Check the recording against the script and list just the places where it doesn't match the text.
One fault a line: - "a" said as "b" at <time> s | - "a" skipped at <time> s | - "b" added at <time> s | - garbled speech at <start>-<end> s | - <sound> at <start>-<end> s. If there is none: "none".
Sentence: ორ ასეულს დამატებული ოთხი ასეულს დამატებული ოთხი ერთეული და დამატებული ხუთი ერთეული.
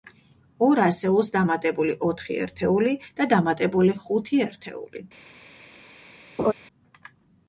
- "ასეულს დამატებული ოთხი" skipped at 2.4 s
- laugh at 6.4-6.5 s